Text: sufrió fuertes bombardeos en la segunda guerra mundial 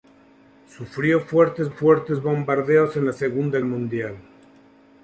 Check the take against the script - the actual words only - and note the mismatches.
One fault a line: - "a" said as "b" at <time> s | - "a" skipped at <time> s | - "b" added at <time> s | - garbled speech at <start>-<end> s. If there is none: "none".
- "fuertes" added at 1.7 s
- "guerra" skipped at 3.6 s